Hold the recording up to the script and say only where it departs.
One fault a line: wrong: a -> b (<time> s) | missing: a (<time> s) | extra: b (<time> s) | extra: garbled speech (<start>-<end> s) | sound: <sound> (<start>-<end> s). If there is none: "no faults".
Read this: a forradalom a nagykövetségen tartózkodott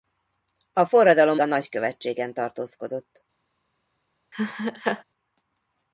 sound: laugh (4.3-5.0 s)